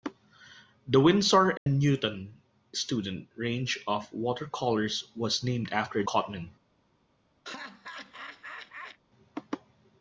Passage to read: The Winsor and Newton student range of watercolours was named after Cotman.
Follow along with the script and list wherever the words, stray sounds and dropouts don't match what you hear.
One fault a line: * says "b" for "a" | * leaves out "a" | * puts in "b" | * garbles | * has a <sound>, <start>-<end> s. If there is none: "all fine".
* has a dropout, 1.6-1.7 s
* has a laugh, 7.4-9.0 s